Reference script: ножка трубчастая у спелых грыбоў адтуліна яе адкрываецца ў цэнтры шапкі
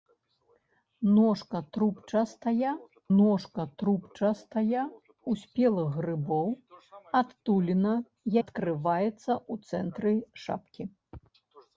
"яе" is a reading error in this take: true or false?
true